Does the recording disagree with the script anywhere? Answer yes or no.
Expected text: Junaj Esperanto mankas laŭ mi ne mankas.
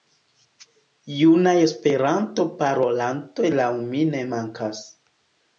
yes